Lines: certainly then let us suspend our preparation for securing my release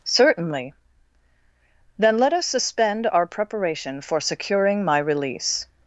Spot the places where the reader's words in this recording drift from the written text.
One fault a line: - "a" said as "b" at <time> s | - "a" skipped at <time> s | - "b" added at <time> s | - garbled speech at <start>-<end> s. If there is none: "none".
none